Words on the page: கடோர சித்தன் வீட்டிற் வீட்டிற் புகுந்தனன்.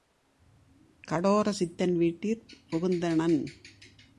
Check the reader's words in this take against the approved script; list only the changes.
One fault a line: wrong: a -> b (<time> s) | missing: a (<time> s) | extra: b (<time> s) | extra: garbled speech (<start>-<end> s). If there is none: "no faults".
missing: வீட்டிற் (2.5 s)